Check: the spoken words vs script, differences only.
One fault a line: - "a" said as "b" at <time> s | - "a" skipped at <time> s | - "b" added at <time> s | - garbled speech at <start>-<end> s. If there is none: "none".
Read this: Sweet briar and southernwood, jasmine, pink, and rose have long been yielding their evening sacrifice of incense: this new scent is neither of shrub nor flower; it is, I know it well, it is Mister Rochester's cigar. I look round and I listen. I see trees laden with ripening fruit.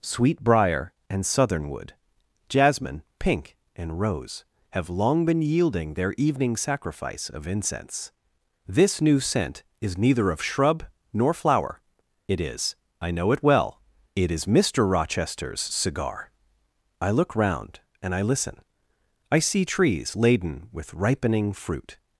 none